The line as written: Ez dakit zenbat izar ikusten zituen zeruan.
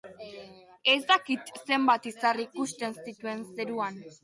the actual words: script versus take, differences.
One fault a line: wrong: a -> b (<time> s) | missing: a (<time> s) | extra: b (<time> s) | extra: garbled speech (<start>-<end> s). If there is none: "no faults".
no faults